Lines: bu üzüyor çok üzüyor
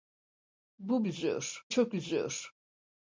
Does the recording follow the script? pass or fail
pass